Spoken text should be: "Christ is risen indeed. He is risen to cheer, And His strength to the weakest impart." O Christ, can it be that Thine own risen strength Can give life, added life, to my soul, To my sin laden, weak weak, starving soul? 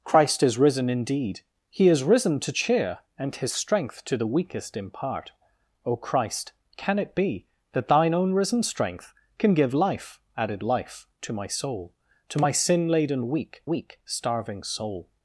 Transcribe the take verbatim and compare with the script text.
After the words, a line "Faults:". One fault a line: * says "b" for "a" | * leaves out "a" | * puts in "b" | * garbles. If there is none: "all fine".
"Christ is risen indeed. He is risen to cheer, And His strength to the weakest impart." O Christ, can it be that Thine own risen strength Can give life, added life, to my soul, To my sin laden, weak weak, starving soul?
Faults:
all fine